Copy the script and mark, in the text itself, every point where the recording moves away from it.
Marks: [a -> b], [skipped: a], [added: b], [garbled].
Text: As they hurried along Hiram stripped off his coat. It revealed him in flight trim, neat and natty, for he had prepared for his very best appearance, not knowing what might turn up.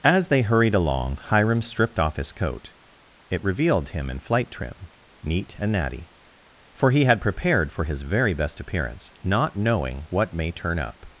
As they hurried along Hiram stripped off his coat. It revealed him in flight trim, neat and natty, for he had prepared for his very best appearance, not knowing what [might -> may] turn up.